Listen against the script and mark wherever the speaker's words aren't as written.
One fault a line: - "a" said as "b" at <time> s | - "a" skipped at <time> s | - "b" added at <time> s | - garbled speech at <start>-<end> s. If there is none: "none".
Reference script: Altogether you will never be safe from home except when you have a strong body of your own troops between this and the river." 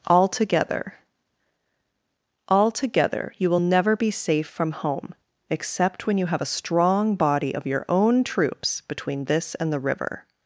- "altogether" added at 2.5 s